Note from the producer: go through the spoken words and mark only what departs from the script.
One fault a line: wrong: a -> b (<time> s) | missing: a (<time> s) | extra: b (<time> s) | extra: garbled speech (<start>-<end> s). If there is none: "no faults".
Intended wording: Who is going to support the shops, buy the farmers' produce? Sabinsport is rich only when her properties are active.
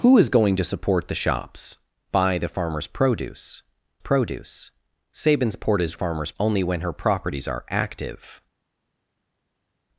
extra: produce (4.0 s)
wrong: rich -> farmers (5.9 s)